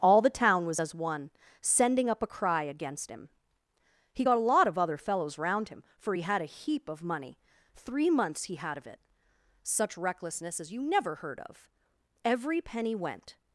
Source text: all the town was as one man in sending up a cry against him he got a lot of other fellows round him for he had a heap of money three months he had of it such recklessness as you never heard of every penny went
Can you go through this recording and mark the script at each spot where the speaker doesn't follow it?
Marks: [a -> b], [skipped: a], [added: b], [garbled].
all the town was as one [skipped: man in] sending up a cry against him he got a lot of other fellows round him for he had a heap of money three months he had of it such recklessness as you never heard of every penny went